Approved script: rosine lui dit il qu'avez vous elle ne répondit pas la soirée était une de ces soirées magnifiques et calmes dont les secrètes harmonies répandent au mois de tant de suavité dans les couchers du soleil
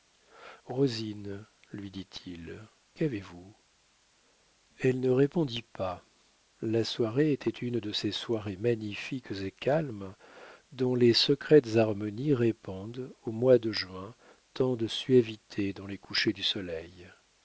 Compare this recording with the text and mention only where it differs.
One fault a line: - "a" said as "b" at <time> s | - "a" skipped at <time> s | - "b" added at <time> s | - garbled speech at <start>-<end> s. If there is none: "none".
- "juin" added at 13.7 s